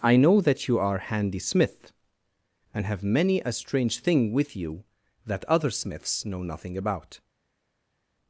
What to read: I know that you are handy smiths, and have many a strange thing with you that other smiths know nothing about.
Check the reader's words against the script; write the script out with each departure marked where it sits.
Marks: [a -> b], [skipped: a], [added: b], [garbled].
I know that you are handy [smiths, -> smith] and have many a strange thing with you that other smiths know nothing about.